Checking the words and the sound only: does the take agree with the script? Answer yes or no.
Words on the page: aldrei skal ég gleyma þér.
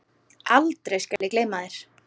no